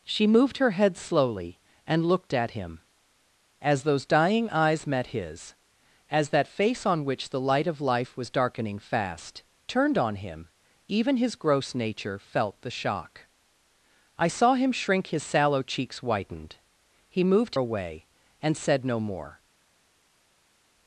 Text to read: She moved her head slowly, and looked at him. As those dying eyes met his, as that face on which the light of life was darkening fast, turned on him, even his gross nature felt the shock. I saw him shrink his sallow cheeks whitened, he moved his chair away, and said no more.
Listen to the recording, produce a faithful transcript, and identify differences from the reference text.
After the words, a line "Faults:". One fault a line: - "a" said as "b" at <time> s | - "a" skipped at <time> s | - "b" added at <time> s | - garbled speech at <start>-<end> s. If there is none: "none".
She moved her head slowly, and looked at him. As those dying eyes met his, as that face on which the light of life was darkening fast, turned on him, even his gross nature felt the shock. I saw him shrink his sallow cheeks whitened, he moved away, and said no more.
Faults:
- "his chair" skipped at 17.6 s